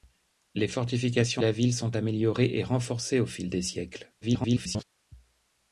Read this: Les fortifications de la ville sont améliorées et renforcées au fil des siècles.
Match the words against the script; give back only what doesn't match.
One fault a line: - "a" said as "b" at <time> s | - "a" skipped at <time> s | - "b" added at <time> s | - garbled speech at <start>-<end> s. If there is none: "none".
- "de" skipped at 1.4 s
- garbled speech at 4.2-4.8 s